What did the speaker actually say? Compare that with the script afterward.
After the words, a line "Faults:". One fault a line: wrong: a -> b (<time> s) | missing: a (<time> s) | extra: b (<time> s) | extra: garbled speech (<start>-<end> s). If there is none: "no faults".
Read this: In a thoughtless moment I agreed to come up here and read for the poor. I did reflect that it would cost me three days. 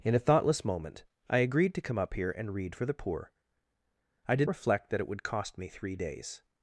In a thoughtless moment I agreed to come up here and read for the poor. I did reflect that it would cost me three days.
Faults:
no faults